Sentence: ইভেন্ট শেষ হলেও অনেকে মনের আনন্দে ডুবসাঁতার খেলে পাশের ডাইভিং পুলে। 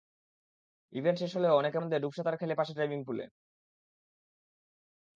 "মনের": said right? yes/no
no